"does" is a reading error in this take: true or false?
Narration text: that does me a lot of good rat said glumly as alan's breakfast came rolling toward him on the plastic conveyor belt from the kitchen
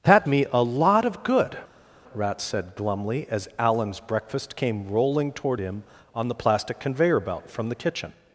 true